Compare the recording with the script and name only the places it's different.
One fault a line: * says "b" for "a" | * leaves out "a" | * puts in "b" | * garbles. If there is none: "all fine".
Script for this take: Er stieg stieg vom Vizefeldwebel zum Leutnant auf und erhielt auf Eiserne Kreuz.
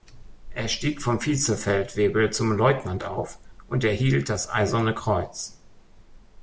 * leaves out "stieg"
* says "das" for "auf"